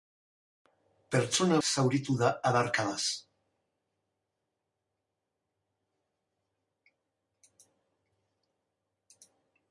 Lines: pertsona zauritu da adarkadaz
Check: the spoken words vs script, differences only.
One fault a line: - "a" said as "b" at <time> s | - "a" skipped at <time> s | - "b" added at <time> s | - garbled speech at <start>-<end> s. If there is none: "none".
none